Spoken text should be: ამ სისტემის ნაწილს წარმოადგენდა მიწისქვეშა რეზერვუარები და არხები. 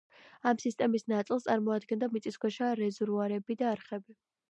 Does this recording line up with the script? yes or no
yes